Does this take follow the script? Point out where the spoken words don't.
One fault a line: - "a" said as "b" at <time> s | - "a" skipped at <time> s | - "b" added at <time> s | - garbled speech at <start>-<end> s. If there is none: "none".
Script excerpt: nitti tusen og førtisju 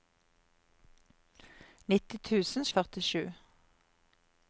none